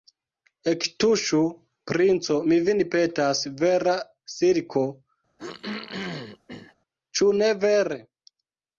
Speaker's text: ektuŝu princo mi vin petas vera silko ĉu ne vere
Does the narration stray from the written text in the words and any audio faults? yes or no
yes